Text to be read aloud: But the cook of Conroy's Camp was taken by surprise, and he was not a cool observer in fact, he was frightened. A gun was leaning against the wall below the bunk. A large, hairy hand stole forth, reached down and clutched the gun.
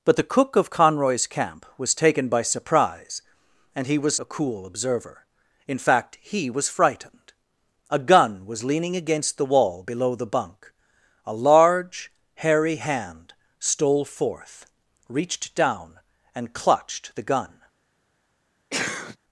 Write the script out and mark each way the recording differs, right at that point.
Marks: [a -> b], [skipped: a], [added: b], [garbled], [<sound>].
But the cook of Conroy's Camp was taken by surprise, and he was [skipped: not] a cool observer in fact, he was frightened. A gun was leaning against the wall below the bunk. A large, hairy hand stole forth, reached down and clutched the gun. [sneeze]